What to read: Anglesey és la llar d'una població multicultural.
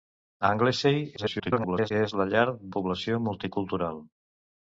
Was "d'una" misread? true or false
true